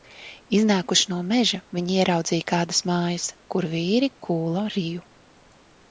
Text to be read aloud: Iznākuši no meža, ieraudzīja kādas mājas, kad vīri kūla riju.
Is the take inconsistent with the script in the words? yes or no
yes